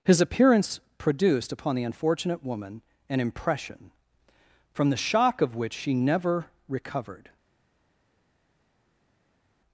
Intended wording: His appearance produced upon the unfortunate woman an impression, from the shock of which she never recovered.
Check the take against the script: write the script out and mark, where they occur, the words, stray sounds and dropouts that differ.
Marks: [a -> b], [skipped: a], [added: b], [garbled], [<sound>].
His appearance produced upon the unfortunate woman an impression, from the shock of which she never recovered.